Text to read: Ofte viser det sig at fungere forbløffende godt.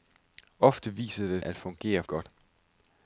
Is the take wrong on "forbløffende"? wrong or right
wrong